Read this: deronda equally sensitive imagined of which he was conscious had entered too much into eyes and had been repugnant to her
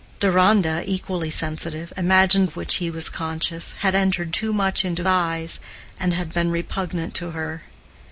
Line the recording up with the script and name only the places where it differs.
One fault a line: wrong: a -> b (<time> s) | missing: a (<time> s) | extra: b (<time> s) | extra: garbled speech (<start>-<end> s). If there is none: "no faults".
no faults